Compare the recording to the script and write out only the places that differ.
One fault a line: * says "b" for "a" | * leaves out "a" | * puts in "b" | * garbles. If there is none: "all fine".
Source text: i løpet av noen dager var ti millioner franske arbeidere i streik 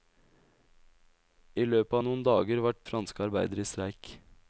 * leaves out "ti millioner"